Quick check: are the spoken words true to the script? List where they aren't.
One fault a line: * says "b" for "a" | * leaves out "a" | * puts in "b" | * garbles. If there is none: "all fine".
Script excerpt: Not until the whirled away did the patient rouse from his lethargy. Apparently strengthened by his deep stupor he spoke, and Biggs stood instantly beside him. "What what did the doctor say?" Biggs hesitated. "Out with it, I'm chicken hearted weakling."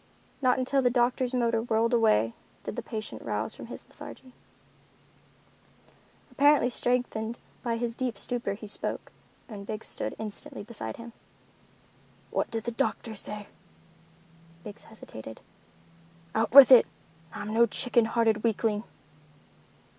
* puts in "doctor's motor"
* leaves out "what"
* puts in "no"